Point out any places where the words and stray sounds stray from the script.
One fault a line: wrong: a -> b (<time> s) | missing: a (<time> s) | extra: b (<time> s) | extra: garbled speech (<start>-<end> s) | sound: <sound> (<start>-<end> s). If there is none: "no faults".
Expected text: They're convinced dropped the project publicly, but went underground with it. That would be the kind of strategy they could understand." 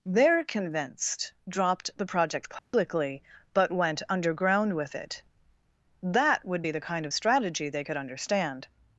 sound: dropout (2.6-2.7 s)